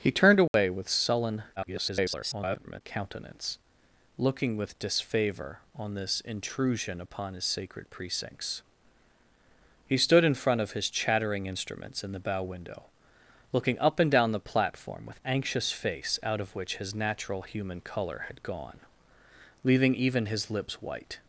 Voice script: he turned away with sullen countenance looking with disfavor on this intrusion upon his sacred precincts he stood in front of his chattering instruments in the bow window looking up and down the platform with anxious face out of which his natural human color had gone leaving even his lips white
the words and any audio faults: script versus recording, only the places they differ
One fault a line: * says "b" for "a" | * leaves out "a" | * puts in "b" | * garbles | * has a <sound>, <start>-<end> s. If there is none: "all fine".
* has a dropout, 0.5-0.5 s
* garbles